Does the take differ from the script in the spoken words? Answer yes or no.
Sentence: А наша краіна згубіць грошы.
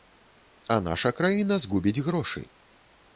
no